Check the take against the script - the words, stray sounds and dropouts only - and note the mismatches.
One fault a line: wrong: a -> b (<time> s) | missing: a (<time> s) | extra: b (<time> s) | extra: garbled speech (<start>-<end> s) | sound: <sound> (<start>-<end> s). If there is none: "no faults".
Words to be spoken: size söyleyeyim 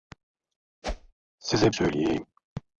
sound: whoosh (0.8-1.1 s)